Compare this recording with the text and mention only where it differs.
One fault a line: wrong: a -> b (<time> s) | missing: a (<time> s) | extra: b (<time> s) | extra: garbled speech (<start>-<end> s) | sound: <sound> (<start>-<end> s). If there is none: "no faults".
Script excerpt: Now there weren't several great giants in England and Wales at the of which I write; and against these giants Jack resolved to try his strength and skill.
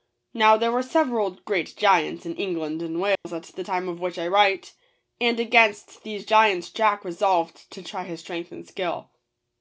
wrong: weren't -> were (0.7 s)
sound: dropout (3.2-3.3 s)
extra: time (3.6 s)